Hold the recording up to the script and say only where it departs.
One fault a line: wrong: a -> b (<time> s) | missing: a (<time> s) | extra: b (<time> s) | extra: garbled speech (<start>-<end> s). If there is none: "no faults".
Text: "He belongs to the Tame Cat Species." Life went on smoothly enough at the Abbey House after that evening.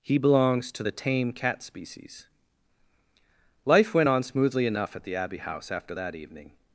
no faults